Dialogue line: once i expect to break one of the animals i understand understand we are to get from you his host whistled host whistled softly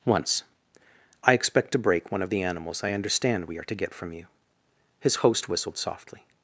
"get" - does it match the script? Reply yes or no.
yes